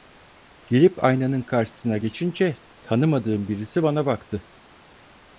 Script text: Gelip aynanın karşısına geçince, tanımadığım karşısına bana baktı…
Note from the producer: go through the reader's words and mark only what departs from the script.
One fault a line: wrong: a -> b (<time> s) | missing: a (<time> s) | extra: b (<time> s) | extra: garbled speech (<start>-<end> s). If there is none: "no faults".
wrong: karşısına -> birisi (3.5 s)